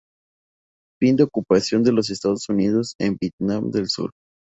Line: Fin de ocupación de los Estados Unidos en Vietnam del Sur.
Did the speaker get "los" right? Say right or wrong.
right